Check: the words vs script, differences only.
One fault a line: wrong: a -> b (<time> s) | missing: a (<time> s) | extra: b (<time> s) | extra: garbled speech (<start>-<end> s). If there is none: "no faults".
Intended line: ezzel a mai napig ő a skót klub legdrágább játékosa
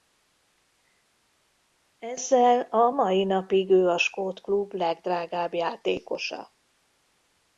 no faults